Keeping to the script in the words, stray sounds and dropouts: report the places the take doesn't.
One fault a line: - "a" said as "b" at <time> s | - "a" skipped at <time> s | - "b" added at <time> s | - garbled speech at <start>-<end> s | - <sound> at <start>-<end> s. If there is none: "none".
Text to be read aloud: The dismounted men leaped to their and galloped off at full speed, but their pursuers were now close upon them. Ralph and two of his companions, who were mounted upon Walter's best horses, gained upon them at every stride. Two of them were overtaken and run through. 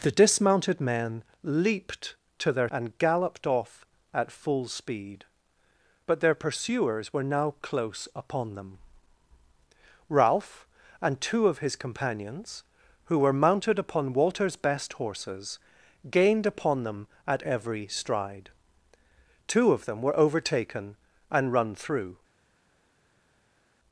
none